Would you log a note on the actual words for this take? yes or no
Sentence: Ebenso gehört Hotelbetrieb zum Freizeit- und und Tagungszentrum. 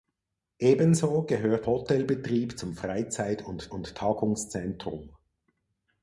no